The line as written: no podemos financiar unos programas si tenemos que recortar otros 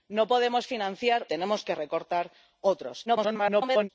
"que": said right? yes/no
yes